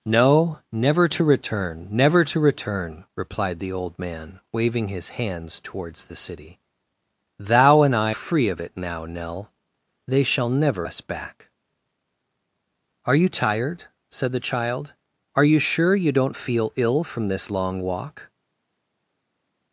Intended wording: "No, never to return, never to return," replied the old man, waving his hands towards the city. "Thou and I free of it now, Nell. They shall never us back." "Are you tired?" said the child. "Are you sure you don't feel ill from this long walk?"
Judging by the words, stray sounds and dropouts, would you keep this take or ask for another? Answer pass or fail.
pass